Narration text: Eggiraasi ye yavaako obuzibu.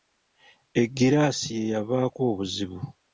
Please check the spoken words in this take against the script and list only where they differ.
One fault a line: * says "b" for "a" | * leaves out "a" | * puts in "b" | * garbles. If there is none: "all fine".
all fine